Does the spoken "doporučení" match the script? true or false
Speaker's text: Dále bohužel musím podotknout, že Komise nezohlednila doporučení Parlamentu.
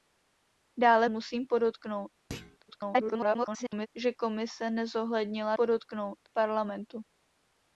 false